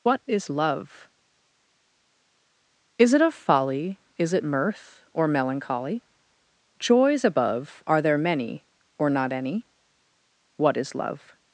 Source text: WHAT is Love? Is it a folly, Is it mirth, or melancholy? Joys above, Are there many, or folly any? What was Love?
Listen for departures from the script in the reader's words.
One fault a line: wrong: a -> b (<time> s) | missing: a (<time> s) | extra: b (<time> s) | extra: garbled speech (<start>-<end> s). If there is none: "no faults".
wrong: folly -> not (9.1 s)
wrong: was -> is (10.8 s)